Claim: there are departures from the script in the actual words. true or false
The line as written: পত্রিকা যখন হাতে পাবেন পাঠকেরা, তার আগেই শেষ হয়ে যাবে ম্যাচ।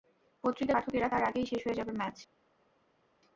true